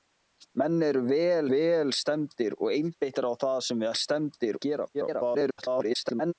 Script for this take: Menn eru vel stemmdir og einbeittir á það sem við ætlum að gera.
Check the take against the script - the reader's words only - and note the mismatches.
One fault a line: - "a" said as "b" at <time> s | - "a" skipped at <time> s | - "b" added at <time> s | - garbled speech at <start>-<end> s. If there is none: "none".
- "vel" added at 1.5 s
- "ætlum" said as "stemmdir" at 4.0 s
- garbled speech at 4.9-6.3 s